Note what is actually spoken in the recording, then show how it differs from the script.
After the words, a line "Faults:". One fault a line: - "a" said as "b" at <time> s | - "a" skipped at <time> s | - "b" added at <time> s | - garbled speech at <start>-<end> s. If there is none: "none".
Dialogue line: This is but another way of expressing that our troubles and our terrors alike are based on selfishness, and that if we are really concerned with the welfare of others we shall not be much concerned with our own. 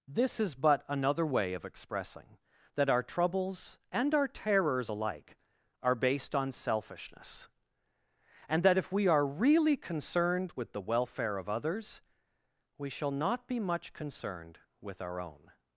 This is but another way of expressing that our troubles and our terrors alike are based on selfishness, and that if we are really concerned with the welfare of others we shall not be much concerned with our own.
Faults:
none